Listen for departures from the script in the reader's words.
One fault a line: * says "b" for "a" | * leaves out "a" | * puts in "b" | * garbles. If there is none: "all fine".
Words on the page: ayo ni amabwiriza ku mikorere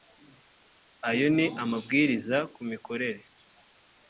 all fine